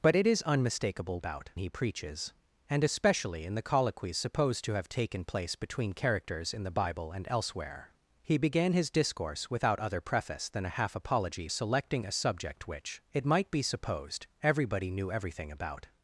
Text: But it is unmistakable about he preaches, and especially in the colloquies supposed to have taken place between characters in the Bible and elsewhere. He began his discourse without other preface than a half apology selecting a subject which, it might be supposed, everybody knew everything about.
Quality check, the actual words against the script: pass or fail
pass